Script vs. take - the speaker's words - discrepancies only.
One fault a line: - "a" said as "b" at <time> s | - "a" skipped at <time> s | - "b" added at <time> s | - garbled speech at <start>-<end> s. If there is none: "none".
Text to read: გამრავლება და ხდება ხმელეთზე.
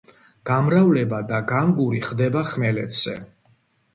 - "განგური" added at 1.5 s